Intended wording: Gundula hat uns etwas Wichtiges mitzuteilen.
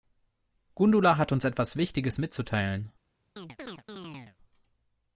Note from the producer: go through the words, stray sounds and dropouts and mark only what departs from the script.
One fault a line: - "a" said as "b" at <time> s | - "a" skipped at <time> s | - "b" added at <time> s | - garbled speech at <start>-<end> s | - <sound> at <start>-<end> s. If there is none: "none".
- chirp at 3.4-4.4 s